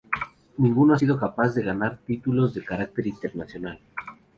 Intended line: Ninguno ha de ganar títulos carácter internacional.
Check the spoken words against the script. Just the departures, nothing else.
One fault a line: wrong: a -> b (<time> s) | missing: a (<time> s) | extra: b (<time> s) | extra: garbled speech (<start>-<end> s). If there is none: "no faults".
extra: sido capaz (0.9 s)
extra: de (2.5 s)